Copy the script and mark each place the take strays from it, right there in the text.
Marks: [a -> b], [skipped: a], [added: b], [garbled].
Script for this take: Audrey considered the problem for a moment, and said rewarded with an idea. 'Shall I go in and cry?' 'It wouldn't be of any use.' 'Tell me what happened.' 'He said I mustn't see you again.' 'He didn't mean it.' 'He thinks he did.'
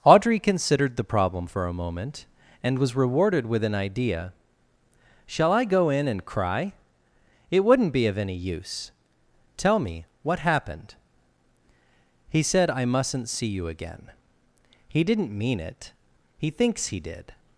Audrey considered the problem for a moment, and [said -> was] rewarded with an idea. 'Shall I go in and cry?' 'It wouldn't be of any use.' 'Tell me what happened.' 'He said I mustn't see you again.' 'He didn't mean it.' 'He thinks he did.'